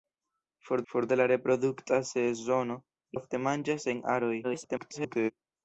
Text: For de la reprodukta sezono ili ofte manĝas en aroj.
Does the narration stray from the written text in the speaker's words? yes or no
yes